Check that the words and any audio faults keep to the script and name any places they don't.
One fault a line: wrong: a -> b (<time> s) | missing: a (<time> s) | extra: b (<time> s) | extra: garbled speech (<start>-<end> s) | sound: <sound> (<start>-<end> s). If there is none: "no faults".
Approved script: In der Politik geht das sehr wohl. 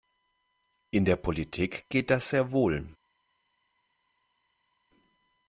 no faults